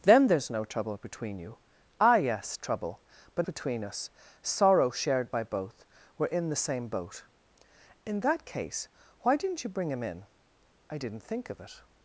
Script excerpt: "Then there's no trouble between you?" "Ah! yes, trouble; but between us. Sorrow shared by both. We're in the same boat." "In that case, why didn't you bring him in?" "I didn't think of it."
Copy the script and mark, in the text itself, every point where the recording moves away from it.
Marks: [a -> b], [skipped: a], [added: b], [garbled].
"Then there's no trouble between you?" "Ah! yes, trouble; but between us. Sorrow shared by both. We're in the same boat." "In that case, why didn't you bring him in?" "I didn't think of it."